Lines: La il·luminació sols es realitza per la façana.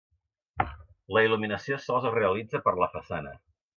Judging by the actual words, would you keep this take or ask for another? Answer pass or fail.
pass